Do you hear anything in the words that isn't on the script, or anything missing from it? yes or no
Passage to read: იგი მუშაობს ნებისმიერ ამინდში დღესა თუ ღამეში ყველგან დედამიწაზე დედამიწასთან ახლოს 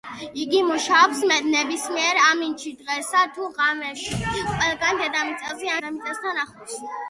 no